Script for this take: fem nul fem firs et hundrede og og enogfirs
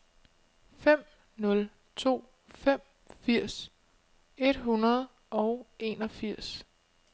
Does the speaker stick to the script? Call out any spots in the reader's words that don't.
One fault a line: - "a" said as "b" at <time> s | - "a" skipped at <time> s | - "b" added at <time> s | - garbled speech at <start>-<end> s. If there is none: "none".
- "to" added at 1.9 s
- "og" skipped at 5.7 s